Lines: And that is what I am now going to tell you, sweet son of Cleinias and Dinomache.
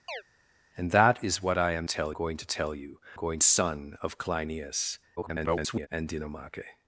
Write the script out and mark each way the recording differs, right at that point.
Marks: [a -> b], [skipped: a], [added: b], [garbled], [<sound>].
[chirp] And that is what I am [now -> tell] going to tell you, [sweet -> going] son of Cleinias [garbled] and Dinomache.